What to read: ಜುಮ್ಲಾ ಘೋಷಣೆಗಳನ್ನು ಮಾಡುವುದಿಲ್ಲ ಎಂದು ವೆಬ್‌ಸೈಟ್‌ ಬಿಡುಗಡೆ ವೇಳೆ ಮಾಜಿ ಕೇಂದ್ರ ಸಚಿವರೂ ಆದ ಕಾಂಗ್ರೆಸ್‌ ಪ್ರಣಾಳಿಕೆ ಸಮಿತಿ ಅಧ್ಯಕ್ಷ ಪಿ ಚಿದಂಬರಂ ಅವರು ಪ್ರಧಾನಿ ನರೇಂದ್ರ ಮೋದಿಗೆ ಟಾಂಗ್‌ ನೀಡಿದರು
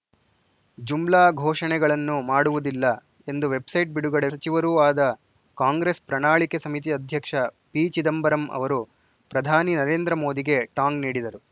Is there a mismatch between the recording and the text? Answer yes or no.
yes